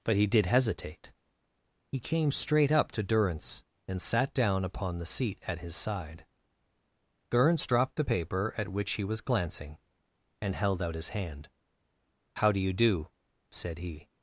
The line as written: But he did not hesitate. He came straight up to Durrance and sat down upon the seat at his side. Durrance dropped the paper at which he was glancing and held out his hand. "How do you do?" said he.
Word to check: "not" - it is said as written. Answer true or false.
false